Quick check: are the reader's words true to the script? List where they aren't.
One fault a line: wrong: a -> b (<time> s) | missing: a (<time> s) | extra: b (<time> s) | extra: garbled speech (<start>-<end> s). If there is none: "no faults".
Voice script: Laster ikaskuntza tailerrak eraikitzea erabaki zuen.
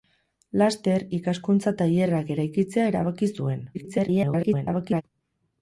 extra: garbled speech (3.7-5.0 s)